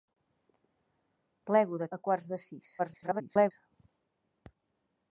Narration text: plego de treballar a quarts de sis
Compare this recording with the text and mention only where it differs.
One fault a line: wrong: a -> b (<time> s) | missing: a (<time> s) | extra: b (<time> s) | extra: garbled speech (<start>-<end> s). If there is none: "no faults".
missing: treballar (1.9 s)
extra: garbled speech (2.8-3.5 s)